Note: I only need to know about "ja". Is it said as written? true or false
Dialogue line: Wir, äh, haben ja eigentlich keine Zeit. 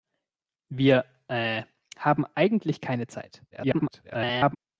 false